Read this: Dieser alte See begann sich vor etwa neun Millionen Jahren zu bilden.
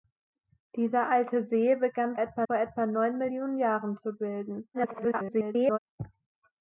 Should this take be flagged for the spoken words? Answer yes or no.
yes